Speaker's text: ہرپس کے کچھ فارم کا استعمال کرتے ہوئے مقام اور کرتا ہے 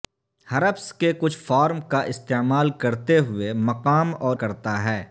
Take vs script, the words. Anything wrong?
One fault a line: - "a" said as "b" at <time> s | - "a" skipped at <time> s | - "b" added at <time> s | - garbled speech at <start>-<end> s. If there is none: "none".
none